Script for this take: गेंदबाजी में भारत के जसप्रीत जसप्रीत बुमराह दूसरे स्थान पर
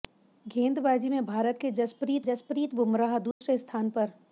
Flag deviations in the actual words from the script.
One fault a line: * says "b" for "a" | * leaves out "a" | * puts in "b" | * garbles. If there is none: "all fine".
all fine